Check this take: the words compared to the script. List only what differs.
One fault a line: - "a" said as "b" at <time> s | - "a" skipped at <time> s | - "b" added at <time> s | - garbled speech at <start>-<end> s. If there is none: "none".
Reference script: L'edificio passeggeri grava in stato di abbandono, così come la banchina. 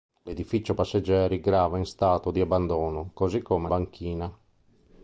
- "la" skipped at 3.7 s